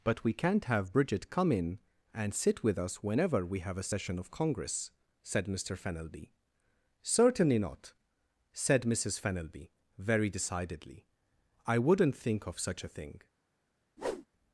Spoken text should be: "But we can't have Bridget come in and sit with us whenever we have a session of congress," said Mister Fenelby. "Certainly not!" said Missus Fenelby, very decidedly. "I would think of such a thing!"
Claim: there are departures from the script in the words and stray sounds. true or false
true